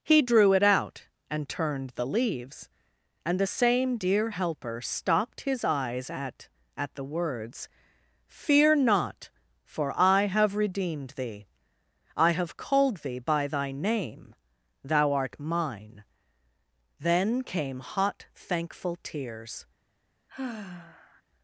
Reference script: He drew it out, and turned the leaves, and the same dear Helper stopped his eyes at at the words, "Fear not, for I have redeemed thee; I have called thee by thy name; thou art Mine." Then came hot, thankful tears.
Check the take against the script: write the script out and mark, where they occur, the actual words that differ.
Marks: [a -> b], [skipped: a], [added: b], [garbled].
He drew it out, and turned the leaves, and the same dear Helper stopped his eyes at at the words, "Fear not, for I have redeemed thee; I have called thee by thy name; thou art Mine." Then came hot, thankful tears.